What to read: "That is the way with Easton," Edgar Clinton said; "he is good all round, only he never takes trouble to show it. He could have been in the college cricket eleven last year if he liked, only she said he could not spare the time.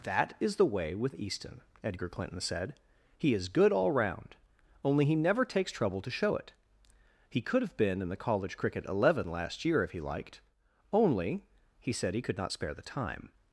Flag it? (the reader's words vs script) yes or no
yes